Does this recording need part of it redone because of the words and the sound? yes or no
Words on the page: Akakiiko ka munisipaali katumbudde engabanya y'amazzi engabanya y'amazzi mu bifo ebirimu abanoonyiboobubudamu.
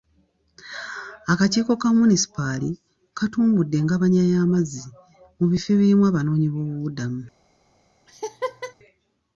yes